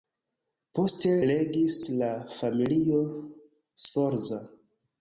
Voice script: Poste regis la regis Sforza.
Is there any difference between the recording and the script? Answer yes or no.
yes